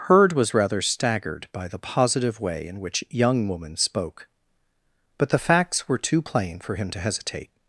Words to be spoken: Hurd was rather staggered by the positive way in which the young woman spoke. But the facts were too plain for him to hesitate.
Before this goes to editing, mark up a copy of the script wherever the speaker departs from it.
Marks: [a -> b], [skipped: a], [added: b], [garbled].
Hurd was rather staggered by the positive way in which [skipped: the] young woman spoke. But the facts were too plain for him to hesitate.